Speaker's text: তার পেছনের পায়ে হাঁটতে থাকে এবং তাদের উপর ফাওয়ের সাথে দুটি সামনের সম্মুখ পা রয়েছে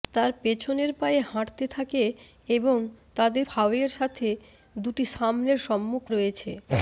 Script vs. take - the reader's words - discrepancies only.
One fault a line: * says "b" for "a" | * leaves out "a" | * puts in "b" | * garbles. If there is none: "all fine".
* leaves out "উপর"
* leaves out "পা"